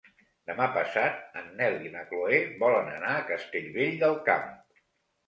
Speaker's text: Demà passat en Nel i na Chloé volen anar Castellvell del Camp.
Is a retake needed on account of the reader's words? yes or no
yes